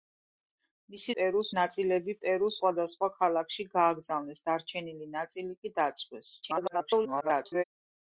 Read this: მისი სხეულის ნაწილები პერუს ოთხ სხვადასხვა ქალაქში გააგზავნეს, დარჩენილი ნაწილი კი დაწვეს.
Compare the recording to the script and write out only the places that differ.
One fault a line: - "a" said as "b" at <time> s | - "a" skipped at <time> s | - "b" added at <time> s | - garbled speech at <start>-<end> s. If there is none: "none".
- "სხეულის" said as "პერუს" at 1.2 s
- "ოთხ" skipped at 2.6 s
- garbled speech at 6.4-7.6 s